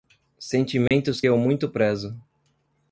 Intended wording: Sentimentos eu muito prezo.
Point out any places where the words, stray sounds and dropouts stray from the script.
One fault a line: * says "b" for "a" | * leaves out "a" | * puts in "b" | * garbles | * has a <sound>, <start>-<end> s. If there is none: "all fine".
* has a dropout, 0.9-0.9 s